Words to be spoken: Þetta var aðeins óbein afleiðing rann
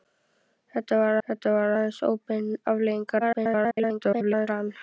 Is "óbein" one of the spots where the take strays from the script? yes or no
no